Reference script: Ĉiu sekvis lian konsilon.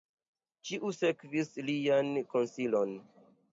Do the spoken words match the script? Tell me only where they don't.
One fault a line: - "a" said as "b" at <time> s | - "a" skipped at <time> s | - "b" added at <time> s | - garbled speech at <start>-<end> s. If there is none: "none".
none